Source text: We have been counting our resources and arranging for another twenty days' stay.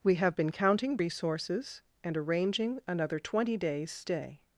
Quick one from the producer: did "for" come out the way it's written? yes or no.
no